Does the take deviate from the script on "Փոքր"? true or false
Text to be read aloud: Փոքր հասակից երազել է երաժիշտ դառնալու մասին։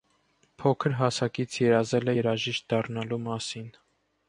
false